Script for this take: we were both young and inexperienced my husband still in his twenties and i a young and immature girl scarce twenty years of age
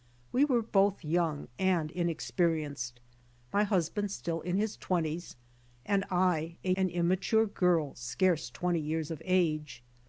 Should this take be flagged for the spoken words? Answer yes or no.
yes